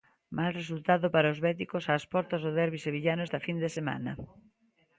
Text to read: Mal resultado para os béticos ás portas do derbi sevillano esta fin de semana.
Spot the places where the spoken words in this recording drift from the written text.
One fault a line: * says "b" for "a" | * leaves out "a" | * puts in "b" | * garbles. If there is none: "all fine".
all fine